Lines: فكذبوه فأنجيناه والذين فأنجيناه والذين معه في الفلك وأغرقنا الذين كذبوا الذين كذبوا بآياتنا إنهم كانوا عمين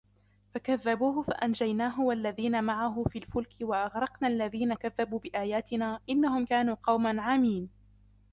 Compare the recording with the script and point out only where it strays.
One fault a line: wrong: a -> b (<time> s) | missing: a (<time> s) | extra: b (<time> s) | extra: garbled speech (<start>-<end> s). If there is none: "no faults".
missing: فأنجيناه والذين (2.6 s)
missing: الذين كذبوا (5.2 s)
extra: قوما (6.8 s)